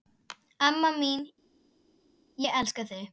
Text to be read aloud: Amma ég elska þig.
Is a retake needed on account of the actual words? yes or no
yes